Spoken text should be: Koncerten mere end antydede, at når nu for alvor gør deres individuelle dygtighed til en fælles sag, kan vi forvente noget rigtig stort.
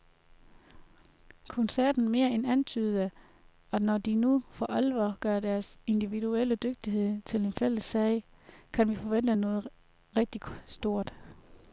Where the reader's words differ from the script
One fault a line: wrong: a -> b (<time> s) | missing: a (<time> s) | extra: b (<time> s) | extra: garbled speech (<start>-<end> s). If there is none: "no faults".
extra: de (4.0 s)